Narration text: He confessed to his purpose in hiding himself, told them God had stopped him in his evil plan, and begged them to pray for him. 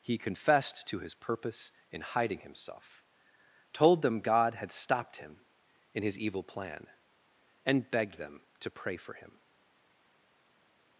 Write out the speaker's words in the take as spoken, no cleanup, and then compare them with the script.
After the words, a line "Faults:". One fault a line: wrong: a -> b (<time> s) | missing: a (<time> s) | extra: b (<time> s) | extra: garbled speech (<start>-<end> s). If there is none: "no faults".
He confessed to his purpose in hiding himself, told them God had stopped him in his evil plan, and begged them to pray for him.
Faults:
no faults